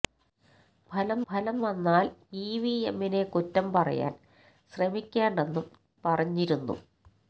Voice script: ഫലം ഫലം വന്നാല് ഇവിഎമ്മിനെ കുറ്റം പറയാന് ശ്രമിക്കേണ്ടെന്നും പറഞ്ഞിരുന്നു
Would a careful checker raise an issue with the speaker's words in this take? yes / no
no